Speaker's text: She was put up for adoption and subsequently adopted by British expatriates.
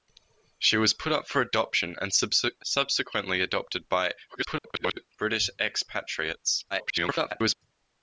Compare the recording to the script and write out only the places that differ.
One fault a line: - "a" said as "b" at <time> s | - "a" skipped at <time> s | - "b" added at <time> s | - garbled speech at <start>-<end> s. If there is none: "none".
- garbled speech at 4.3-5.1 s
- garbled speech at 6.7-7.6 s